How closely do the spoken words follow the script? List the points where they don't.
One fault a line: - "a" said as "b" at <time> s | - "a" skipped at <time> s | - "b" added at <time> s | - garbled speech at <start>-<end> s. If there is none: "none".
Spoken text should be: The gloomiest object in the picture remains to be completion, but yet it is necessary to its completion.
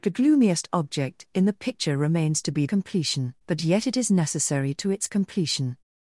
none